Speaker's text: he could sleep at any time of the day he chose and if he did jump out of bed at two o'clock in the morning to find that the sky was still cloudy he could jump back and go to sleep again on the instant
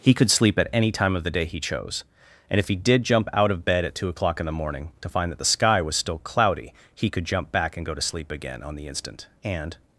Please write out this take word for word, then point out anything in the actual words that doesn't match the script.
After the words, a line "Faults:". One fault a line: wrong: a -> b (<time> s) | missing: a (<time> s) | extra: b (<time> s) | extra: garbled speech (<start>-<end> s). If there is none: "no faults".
he could sleep at any time of the day he chose and if he did jump out of bed at two o'clock in the morning to find that the sky was still cloudy he could jump back and go to sleep again on the instant and
Faults:
extra: and (9.4 s)